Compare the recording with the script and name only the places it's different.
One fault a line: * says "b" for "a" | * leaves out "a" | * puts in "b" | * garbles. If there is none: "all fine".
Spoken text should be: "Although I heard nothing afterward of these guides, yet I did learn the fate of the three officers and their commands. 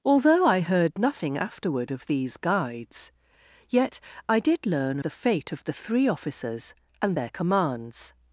all fine